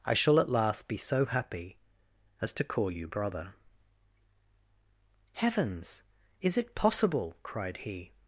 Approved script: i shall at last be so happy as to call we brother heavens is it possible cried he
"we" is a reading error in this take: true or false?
true